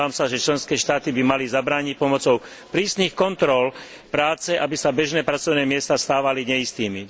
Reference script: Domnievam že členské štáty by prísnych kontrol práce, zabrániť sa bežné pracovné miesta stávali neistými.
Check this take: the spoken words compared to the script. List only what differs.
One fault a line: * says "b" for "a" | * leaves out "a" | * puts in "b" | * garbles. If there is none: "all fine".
* puts in "sa"
* puts in "mali zabrániť pomocou"
* says "aby" for "zabrániť"